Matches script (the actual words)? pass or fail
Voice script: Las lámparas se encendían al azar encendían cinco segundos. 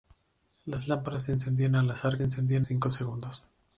pass